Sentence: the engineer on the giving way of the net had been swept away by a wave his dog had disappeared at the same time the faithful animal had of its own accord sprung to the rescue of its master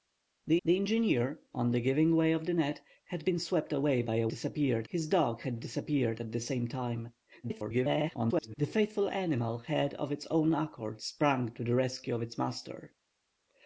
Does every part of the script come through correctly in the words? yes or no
no